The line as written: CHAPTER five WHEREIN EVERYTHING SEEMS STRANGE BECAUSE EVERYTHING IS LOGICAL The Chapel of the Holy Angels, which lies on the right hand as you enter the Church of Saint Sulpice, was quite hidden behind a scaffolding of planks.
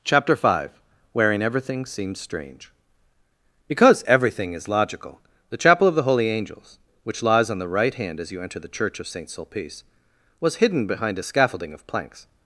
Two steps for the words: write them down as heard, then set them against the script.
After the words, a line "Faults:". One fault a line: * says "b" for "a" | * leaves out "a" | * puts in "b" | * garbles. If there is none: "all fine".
CHAPTER five WHEREIN EVERYTHING SEEMS STRANGE BECAUSE EVERYTHING IS LOGICAL The Chapel of the Holy Angels, which lies on the right hand as you enter the Church of Saint Sulpice, was hidden behind a scaffolding of planks.
Faults:
* leaves out "quite"